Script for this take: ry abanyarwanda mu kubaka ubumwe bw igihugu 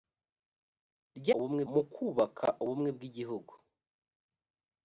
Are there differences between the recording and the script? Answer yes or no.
yes